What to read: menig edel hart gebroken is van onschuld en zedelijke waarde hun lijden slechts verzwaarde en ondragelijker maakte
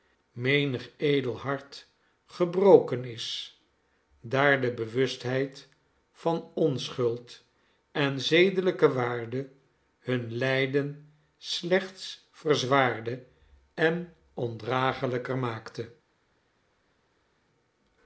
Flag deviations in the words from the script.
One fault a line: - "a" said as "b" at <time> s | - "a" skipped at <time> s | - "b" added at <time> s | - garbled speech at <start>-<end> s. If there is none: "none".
- "daar de bewustheid" added at 4.2 s